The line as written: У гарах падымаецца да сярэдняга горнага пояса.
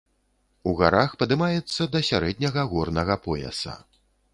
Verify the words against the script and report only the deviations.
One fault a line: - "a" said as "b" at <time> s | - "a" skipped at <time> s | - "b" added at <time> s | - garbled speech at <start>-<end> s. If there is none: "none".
none